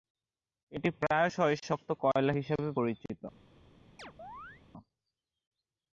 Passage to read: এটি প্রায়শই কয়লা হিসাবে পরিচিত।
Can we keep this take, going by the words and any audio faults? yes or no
no